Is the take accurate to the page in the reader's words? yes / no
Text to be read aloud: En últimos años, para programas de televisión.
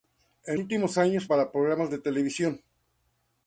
yes